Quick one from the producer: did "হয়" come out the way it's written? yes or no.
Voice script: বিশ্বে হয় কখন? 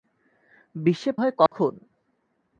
yes